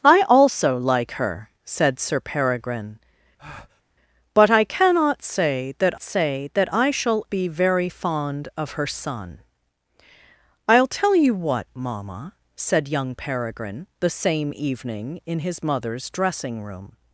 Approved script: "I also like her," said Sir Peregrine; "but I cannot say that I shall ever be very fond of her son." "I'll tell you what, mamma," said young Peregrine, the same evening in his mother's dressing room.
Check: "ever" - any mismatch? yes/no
yes